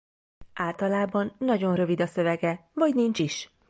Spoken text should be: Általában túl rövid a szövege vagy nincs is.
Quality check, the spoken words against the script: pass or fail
fail